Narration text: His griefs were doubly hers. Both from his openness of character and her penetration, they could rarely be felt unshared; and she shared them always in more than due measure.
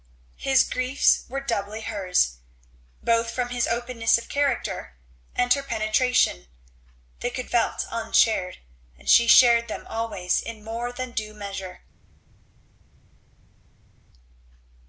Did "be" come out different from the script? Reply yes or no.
yes